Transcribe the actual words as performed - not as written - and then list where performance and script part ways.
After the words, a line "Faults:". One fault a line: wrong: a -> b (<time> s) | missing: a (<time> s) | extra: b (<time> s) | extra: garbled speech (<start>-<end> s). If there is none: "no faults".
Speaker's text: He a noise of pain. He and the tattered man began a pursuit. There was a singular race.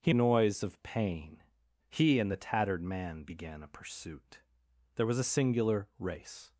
He a noise of pain. He and the tattered man began a pursuit. There was a singular race.
Faults:
no faults